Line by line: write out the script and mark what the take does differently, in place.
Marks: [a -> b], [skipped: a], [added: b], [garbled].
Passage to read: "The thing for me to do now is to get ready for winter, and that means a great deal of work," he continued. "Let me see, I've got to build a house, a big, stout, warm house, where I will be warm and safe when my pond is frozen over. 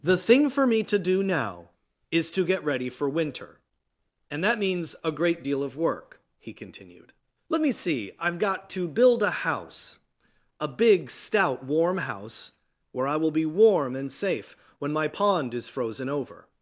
"The thing for me to do now is to get ready for winter, and that means a great deal of work," he continued. "Let me see, I've got to build a house, a big, stout, warm house, where I will be warm and safe when my pond is frozen over.